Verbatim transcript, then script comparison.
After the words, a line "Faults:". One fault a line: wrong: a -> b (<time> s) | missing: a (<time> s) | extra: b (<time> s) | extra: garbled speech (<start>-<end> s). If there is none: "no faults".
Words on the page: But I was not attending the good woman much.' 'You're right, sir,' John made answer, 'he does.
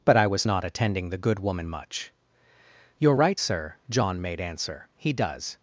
But I was not attending the good woman much.' 'You're right, sir,' John made answer, 'he does.
Faults:
no faults